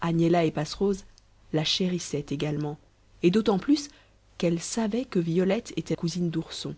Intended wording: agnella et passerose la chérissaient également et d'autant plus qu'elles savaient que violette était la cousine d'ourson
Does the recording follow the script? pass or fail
fail